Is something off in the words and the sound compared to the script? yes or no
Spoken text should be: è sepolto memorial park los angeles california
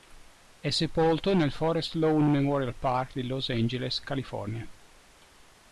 yes